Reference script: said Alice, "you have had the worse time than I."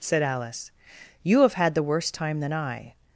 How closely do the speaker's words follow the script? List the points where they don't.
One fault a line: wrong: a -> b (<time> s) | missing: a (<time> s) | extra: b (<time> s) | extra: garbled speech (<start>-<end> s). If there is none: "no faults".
no faults